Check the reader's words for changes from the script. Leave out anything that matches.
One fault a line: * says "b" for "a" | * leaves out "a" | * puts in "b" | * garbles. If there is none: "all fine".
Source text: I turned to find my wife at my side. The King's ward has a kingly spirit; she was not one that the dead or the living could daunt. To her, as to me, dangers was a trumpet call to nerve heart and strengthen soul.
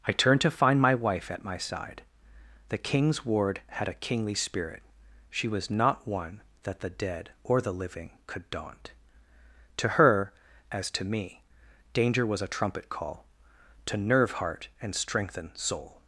* says "had" for "has"
* says "danger" for "dangers"